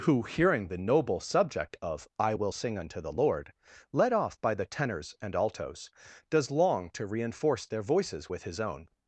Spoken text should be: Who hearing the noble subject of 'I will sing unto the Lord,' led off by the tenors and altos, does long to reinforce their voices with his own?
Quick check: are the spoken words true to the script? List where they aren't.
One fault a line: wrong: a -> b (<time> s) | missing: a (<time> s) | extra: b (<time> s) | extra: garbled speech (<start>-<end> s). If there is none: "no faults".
no faults